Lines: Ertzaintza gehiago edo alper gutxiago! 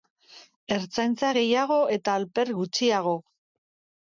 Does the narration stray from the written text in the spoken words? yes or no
yes